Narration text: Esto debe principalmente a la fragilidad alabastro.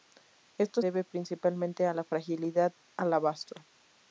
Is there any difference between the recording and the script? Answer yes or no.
no